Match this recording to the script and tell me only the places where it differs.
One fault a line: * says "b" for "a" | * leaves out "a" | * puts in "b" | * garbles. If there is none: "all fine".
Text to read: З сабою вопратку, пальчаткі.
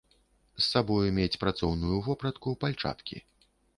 * puts in "мець працоўную"